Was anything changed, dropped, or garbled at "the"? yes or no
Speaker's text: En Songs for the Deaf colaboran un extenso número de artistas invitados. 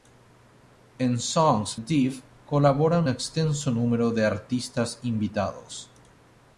yes